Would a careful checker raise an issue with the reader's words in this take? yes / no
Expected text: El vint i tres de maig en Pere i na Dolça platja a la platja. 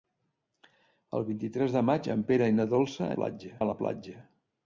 no